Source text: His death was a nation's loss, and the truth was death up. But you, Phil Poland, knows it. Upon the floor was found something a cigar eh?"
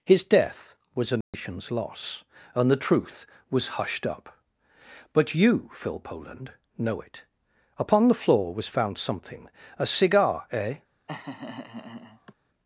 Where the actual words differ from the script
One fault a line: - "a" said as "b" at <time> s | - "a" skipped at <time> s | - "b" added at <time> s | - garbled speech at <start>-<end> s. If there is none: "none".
- "death" said as "hushed" at 3.8 s
- "knows" said as "know" at 6.8 s